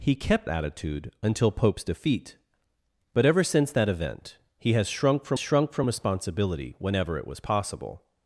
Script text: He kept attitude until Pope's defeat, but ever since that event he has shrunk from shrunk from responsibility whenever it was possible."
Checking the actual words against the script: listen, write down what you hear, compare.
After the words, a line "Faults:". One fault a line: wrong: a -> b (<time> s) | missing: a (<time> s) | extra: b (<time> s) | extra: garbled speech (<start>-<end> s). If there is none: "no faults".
He kept attitude until Pope's defeat, but ever since that event he has shrunk from shrunk from responsibility whenever it was possible."
Faults:
no faults